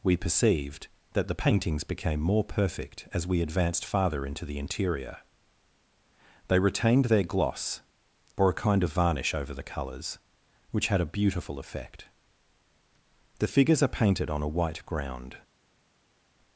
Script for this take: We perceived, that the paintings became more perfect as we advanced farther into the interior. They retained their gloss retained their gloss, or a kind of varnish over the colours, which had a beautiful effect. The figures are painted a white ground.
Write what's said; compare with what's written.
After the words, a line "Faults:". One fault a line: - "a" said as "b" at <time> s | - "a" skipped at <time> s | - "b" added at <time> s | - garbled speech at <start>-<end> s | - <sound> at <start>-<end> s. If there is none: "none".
We perceived, that the paintings became more perfect as we advanced farther into the interior. They retained their gloss, or a kind of varnish over the colours, which had a beautiful effect. The figures are painted on a white ground.
Faults:
- "retained their gloss" skipped at 7.8 s
- "on" added at 14.3 s